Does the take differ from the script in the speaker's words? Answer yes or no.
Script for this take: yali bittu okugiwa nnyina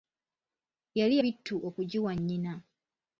no